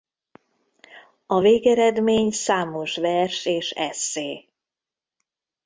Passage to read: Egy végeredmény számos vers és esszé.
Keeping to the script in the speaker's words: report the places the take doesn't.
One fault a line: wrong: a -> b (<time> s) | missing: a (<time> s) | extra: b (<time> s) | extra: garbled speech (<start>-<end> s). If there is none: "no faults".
wrong: Egy -> A (1.2 s)